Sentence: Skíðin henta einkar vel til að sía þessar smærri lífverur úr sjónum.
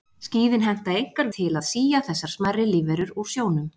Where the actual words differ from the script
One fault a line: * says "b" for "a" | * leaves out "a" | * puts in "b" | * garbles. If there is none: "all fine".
* leaves out "vel"